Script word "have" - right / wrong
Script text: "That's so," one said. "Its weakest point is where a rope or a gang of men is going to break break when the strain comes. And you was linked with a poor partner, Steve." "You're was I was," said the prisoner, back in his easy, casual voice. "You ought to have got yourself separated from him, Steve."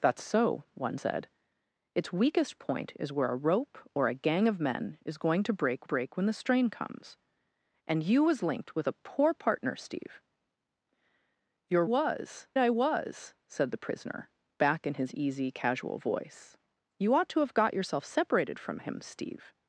right